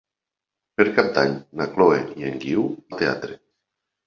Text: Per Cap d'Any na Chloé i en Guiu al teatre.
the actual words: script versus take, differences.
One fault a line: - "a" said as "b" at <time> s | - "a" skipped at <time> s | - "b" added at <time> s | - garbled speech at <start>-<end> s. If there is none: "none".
none